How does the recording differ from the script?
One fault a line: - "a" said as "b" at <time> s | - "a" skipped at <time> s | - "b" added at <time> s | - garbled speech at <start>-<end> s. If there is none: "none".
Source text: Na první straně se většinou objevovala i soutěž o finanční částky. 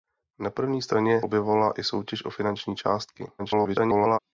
- "se většinou" skipped at 1.2 s
- garbled speech at 3.4-4.2 s